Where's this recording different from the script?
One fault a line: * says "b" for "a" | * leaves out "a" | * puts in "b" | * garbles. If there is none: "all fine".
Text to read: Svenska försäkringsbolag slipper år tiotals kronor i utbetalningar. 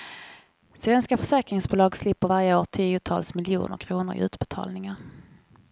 * puts in "varje"
* puts in "miljoner"